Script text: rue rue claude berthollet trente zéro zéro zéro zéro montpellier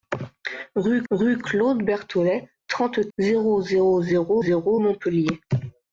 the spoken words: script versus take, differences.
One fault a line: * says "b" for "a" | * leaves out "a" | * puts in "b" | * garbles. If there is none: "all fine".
all fine